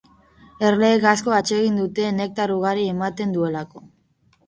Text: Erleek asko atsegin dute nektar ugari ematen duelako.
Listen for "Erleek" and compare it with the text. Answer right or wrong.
right